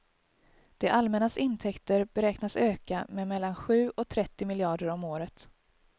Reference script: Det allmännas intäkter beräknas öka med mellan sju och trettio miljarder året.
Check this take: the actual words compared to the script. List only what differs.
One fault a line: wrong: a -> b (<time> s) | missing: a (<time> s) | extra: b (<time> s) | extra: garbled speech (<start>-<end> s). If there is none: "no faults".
extra: om (4.9 s)